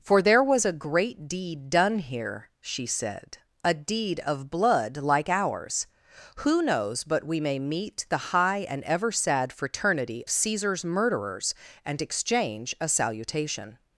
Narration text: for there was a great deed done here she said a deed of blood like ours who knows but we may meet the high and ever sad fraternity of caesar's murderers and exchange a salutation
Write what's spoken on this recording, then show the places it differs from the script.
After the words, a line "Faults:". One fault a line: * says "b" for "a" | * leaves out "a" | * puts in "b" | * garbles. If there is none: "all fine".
for there was a great deed done here she said a deed of blood like ours who knows but we may meet the high and ever sad fraternity caesar's murderers and exchange a salutation
Faults:
* leaves out "of"